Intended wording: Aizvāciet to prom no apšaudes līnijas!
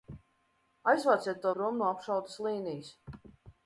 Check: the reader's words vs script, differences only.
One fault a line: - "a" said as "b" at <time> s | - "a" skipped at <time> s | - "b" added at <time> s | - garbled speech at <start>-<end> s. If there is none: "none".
none